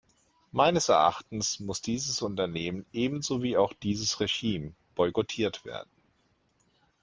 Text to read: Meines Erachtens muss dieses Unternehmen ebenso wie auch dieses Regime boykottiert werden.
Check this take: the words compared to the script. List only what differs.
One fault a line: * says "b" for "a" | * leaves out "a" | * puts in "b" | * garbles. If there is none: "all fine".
all fine